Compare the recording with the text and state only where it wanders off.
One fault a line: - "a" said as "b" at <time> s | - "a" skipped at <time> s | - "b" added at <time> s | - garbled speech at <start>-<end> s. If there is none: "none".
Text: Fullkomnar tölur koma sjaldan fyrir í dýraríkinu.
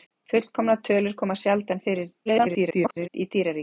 - garbled speech at 2.3-3.1 s